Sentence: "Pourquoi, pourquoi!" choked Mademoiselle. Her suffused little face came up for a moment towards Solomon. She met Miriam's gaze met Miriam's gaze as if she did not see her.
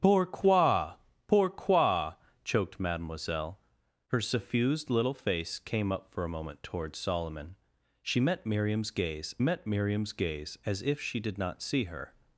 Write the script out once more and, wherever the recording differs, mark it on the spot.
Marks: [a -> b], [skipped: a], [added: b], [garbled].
"Pourquoi, pourquoi!" choked Mademoiselle. Her suffused little face came up for a moment towards Solomon. She met Miriam's gaze met Miriam's gaze as if she did not see her.